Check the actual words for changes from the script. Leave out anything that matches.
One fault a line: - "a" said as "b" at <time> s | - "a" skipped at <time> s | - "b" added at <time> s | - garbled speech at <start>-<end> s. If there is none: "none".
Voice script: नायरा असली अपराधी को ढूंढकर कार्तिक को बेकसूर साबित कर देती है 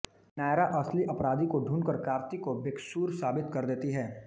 none